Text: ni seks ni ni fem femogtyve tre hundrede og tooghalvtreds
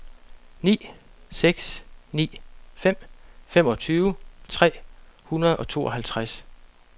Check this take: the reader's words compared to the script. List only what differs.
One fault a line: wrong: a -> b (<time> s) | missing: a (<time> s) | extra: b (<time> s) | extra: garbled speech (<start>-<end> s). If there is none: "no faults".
missing: ni (2.4 s)